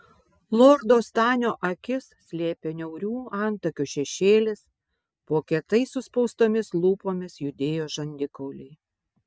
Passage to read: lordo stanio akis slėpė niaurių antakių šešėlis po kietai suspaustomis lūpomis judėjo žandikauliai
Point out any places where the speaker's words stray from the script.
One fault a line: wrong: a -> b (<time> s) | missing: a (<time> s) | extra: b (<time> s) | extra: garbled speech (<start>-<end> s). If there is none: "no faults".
no faults